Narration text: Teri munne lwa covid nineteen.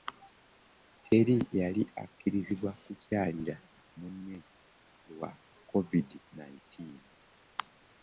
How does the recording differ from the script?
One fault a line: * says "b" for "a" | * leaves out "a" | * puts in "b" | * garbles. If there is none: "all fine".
* puts in "yali akkirizibwa kukyalira"